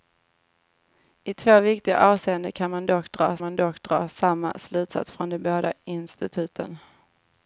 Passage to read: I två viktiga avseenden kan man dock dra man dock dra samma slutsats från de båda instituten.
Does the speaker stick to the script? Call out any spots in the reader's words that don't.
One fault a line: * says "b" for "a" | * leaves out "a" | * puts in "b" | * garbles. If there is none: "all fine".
all fine